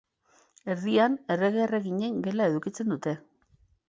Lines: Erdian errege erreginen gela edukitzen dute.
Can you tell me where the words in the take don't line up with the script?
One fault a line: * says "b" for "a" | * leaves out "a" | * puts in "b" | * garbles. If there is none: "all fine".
all fine